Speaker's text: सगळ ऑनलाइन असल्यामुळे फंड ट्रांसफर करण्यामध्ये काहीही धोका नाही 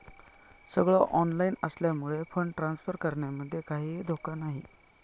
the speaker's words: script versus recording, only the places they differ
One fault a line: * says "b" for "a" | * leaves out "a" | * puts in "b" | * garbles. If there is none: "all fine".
all fine